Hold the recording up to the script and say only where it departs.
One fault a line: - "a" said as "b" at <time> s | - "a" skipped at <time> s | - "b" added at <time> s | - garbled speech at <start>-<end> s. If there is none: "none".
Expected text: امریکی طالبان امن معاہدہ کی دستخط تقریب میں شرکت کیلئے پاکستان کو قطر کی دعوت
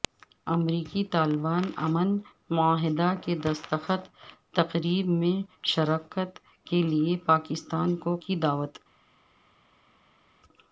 - "قطر" skipped at 8.2 s